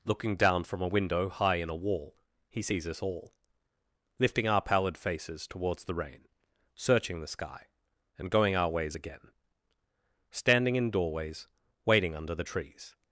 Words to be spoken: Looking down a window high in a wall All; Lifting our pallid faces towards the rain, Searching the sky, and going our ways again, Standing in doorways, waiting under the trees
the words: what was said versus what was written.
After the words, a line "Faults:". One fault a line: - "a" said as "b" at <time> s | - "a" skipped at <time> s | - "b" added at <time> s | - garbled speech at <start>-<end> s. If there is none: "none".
Looking down from a window high in a wall He sees us all; Lifting our pallid faces towards the rain, Searching the sky, and going our ways again, Standing in doorways, waiting under the trees
Faults:
- "from" added at 0.6 s
- "He sees us" added at 2.5 s